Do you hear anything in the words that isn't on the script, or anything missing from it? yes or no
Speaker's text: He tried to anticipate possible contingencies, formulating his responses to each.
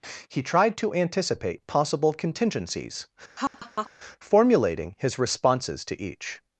no